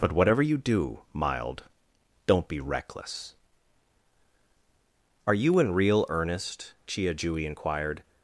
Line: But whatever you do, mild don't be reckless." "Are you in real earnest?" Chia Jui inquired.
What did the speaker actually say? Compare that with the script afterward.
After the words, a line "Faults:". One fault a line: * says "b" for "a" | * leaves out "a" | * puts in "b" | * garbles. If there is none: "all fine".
But whatever you do, mild don't be reckless." "Are you in real earnest?" Chia Jui inquired.
Faults:
all fine